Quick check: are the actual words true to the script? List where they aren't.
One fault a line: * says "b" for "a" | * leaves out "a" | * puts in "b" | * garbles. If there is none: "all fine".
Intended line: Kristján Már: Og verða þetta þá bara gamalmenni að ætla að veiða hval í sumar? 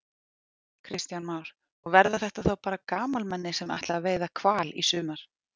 * says "sem" for "að"